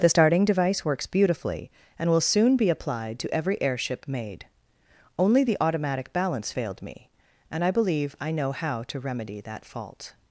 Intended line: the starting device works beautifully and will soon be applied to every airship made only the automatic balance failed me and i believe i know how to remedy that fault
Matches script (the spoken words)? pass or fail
pass